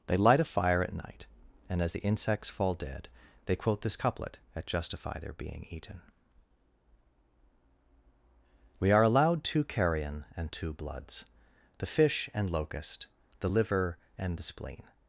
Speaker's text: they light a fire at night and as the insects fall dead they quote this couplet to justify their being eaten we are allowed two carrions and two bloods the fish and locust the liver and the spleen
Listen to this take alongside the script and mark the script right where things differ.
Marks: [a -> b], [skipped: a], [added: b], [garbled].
they light a fire at night and as the insects fall dead they quote this couplet [to -> at] justify their being eaten we are allowed two [carrions -> carrion] and two bloods the fish and locust the liver and the spleen